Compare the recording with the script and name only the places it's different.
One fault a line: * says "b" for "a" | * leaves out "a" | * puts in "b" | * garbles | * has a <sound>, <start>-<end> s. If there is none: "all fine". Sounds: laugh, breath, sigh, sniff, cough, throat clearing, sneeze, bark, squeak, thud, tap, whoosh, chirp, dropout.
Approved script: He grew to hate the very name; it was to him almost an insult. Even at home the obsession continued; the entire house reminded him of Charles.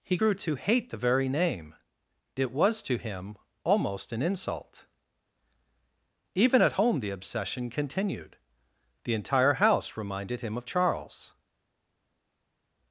all fine